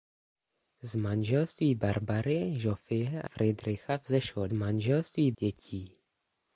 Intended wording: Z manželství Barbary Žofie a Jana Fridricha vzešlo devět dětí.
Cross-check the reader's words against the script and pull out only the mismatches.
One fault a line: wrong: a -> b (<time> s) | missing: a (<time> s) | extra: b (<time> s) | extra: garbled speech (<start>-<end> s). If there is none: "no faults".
missing: Jana (3.3 s)
wrong: devět -> manželství (4.5 s)